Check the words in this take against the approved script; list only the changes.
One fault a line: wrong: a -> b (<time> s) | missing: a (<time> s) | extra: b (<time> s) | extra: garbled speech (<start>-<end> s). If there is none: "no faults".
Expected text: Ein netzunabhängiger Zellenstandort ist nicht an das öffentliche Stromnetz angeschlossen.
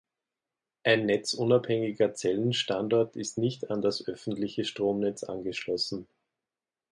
no faults